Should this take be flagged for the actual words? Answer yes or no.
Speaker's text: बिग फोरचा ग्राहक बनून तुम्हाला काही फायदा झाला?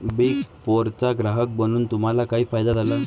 no